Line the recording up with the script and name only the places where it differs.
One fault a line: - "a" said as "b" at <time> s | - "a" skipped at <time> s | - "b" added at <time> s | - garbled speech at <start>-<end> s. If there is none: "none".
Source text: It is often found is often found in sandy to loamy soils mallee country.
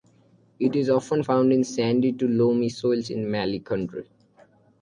- "is often found" skipped at 1.5 s
- "in" added at 3.1 s